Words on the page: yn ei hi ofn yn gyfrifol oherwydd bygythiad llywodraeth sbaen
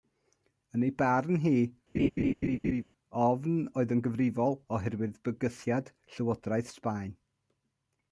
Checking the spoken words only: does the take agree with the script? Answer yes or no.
no